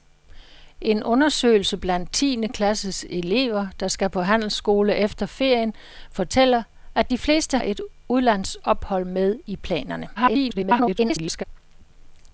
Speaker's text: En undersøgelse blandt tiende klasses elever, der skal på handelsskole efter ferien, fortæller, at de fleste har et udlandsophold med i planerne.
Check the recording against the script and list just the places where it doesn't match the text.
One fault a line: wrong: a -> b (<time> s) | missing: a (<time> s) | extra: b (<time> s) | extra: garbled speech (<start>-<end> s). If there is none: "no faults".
missing: har (7.6 s)
extra: garbled speech (10.2-11.4 s)